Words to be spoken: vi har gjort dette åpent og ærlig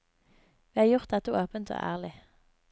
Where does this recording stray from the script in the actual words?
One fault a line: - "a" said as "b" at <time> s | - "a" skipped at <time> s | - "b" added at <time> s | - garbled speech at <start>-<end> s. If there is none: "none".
none